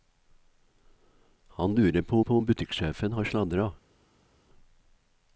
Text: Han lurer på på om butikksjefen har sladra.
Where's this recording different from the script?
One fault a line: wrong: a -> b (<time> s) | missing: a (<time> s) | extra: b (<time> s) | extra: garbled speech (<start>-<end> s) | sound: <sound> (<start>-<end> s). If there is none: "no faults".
no faults